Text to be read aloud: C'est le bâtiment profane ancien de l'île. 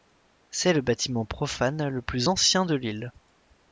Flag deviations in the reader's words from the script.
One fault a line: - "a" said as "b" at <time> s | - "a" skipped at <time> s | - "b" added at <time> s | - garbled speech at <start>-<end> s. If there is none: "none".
- "le plus" added at 1.9 s